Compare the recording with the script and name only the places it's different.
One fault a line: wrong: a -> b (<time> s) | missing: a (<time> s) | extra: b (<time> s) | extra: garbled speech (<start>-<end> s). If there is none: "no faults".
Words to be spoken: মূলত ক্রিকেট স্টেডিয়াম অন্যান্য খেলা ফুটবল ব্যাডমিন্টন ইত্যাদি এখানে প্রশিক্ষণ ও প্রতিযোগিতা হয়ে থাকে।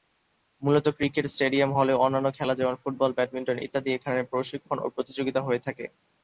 extra: হলেও (1.8 s)
extra: যেমন (2.6 s)